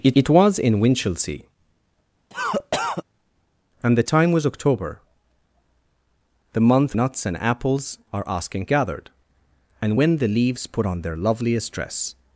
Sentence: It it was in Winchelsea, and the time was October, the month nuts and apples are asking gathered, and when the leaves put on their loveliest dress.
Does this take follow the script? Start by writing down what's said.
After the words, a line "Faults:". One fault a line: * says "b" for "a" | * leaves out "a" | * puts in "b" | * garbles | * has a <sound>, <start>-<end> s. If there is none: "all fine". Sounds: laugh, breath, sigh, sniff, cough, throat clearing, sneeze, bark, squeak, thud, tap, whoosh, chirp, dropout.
It it was in Winchelsea, and the time was October, the month nuts and apples are asking gathered, and when the leaves put on their loveliest dress.
Faults:
* has a cough, 2.3-3.0 s